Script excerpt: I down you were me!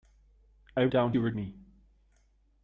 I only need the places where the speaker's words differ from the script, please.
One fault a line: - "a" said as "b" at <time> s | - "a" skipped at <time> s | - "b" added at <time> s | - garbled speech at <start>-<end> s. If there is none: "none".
none